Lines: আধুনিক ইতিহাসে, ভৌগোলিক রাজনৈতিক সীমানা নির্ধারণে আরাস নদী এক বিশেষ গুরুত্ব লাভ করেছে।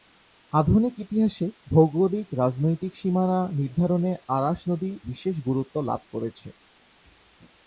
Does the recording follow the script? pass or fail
fail